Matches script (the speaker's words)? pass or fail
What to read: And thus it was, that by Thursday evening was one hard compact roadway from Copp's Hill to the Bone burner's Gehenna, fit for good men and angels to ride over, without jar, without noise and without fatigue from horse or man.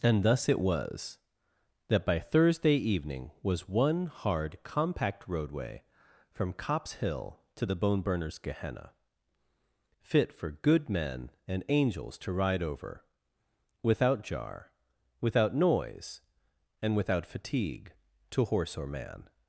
fail